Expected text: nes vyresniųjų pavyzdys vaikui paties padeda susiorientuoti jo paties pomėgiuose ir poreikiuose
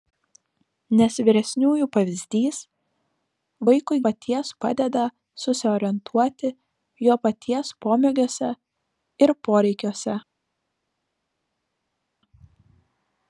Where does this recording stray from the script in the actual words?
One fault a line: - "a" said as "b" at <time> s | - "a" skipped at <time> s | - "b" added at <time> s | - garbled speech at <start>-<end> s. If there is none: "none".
none